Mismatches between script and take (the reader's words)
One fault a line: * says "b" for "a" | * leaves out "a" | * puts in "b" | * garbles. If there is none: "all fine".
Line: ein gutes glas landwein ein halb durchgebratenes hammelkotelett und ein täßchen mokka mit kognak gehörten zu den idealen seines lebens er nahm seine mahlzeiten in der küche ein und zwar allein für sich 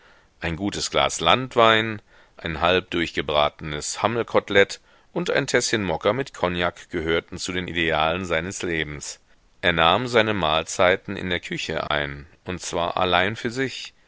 all fine